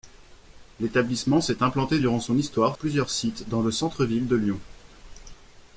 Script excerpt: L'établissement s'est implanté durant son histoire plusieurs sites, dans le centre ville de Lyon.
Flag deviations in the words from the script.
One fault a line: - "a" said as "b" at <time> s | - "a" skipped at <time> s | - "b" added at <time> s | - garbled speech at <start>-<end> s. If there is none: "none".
none